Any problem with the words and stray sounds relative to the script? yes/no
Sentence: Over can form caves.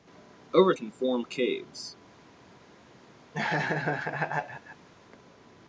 yes